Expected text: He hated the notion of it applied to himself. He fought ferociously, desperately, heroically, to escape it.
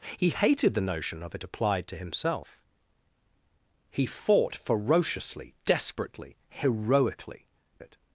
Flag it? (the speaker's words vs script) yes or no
yes